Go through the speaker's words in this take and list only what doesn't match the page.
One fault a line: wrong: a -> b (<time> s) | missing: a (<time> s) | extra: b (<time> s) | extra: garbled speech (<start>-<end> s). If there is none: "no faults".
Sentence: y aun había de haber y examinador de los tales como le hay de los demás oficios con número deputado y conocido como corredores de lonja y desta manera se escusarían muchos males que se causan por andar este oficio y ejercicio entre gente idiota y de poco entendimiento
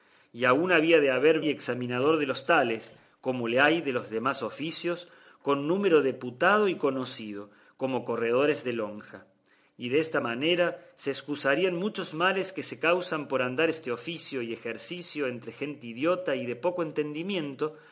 no faults